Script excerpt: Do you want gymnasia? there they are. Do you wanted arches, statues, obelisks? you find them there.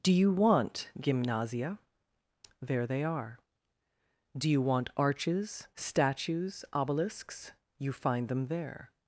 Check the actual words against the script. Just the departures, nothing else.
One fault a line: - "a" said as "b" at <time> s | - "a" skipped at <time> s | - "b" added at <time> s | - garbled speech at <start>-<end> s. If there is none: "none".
- "wanted" said as "want" at 4.6 s